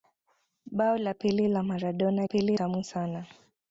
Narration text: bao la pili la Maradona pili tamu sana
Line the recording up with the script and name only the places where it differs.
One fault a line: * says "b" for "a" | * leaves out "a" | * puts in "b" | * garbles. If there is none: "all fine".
all fine